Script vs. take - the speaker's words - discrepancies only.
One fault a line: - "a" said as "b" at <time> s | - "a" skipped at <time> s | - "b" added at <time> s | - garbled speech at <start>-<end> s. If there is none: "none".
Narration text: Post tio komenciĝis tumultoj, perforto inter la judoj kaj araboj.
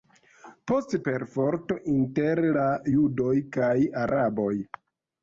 - "tio komenciĝis tumultoj" skipped at 0.9 s